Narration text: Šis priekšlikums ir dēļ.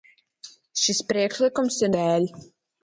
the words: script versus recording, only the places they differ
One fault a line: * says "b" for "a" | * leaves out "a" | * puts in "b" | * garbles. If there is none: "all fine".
all fine